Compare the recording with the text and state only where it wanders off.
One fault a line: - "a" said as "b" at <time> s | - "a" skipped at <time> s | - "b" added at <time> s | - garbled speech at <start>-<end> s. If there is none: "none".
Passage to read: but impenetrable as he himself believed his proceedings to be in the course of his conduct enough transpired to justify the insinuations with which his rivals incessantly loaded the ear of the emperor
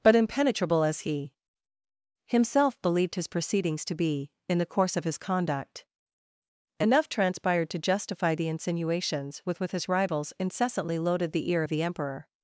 none